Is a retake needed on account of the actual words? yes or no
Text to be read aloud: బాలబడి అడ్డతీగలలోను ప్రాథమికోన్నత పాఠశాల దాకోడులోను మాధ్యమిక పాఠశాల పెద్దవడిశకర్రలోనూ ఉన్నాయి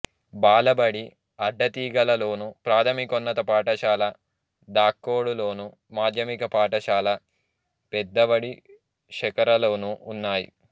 no